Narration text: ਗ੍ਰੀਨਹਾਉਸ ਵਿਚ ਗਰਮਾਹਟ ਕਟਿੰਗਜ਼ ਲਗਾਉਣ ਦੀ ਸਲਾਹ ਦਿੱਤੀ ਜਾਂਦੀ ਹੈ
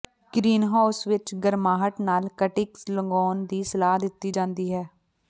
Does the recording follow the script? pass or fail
fail